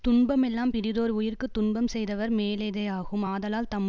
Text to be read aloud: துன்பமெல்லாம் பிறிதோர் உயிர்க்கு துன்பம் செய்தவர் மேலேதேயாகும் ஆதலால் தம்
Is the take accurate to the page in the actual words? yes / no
yes